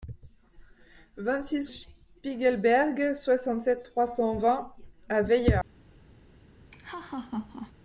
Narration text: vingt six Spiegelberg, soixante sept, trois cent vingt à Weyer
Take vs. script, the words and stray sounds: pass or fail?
fail